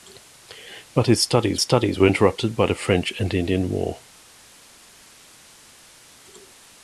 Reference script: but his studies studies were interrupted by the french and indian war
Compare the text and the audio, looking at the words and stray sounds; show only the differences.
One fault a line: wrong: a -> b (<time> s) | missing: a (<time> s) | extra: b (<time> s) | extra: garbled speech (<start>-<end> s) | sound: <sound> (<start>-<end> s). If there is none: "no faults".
no faults